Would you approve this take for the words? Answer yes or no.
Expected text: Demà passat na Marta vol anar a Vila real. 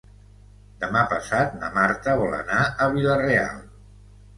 yes